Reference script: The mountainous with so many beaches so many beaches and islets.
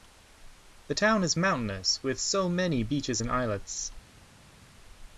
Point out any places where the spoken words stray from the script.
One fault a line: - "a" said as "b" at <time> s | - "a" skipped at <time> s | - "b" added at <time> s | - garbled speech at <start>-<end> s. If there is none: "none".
- "town is" added at 0.9 s
- "so many beaches" skipped at 3.2 s